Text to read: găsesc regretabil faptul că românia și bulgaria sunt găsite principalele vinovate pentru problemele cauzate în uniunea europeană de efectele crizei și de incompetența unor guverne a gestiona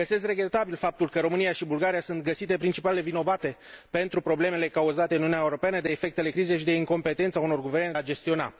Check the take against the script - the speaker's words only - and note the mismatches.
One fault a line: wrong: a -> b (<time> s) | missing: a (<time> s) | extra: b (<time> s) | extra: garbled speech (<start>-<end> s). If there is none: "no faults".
no faults